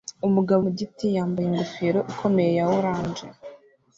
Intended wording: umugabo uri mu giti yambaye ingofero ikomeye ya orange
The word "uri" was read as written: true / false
false